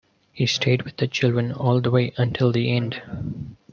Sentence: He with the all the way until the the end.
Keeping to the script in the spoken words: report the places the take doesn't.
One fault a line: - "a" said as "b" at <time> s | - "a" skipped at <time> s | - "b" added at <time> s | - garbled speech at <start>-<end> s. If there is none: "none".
- "stayed" added at 0.5 s
- "children" added at 1.1 s
- "the" skipped at 2.7 s